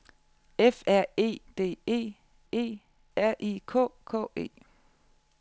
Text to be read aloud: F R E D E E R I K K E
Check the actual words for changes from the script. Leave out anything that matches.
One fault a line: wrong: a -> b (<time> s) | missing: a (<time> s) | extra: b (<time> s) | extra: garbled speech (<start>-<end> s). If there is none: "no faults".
no faults